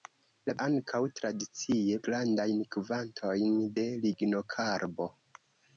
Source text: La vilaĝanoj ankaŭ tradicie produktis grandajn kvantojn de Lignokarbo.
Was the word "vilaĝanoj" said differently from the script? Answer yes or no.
yes